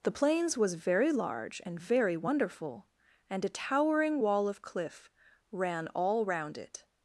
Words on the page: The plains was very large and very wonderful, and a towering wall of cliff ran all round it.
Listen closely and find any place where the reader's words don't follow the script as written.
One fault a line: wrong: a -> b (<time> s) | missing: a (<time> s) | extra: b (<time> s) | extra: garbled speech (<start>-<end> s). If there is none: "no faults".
no faults